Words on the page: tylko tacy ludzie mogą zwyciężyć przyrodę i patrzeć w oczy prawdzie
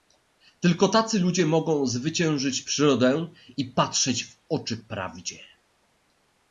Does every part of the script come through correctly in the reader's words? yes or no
yes